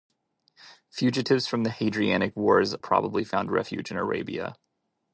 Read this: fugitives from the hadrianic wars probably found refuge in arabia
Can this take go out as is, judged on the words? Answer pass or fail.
pass